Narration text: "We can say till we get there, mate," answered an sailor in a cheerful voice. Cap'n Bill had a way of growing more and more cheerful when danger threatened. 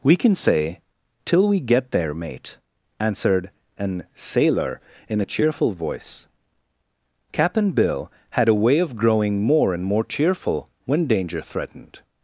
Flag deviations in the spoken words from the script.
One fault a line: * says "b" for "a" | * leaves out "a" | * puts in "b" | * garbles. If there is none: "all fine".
all fine